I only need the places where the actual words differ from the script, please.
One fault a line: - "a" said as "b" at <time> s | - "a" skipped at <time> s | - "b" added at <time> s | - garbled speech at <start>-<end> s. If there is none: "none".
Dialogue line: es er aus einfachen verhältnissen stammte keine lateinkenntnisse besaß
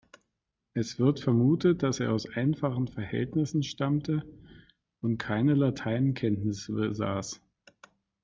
- "wird vermutet dass" added at 1.0 s
- "und" added at 5.0 s